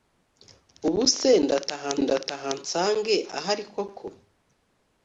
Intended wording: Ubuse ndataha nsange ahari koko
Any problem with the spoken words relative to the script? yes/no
yes